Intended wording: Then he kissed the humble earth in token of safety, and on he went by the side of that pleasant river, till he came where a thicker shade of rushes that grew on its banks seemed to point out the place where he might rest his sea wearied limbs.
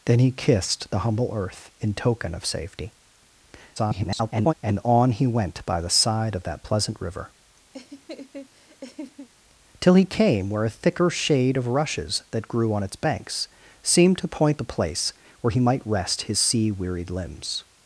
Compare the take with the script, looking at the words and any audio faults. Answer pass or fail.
fail